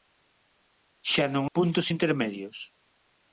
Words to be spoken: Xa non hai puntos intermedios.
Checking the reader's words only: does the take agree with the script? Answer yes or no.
no